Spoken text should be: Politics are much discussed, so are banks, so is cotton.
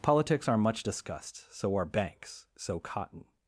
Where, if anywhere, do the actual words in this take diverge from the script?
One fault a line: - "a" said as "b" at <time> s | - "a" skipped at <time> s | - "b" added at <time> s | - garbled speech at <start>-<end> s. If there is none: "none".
- "is" skipped at 2.8 s